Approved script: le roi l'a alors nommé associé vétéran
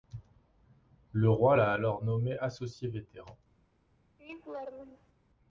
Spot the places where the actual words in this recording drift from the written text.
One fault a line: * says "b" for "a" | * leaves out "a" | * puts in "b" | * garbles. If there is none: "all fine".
all fine